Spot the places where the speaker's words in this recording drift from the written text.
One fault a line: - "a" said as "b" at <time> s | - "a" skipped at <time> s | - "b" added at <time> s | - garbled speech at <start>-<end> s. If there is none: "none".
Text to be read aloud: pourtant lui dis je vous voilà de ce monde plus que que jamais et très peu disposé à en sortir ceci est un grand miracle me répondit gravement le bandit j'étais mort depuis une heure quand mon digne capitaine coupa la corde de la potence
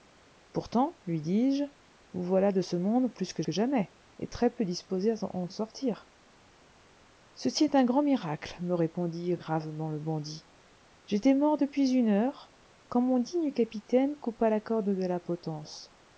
none